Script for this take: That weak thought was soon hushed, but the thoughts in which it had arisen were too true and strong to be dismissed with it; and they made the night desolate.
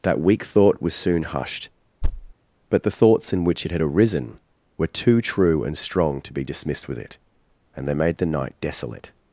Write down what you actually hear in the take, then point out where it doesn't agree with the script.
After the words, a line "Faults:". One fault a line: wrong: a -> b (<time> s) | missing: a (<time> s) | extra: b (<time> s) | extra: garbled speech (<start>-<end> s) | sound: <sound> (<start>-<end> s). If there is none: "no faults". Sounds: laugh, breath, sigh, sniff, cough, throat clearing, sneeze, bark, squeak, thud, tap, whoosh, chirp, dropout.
That weak thought was soon hushed, but the thoughts in which it had arisen were too true and strong to be dismissed with it; and they made the night desolate.
Faults:
sound: thud (2.0-2.3 s)